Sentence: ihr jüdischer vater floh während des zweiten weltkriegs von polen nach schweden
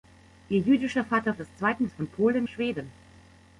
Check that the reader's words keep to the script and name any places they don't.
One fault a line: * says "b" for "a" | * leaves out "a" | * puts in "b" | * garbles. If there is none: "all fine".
* leaves out "floh während"
* leaves out "weltkriegs"
* leaves out "nach"